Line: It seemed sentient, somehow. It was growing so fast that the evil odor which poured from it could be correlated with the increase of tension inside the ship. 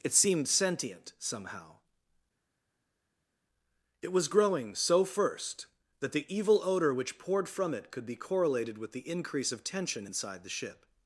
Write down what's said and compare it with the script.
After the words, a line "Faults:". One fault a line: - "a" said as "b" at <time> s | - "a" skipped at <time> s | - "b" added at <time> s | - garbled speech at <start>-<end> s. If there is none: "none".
It seemed sentient, somehow. It was growing so first that the evil odor which poured from it could be correlated with the increase of tension inside the ship.
Faults:
- "fast" said as "first" at 5.0 s